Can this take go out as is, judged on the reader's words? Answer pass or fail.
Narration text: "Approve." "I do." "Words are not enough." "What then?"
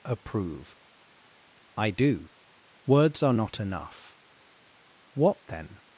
pass